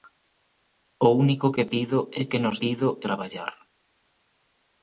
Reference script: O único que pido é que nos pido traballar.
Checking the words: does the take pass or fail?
pass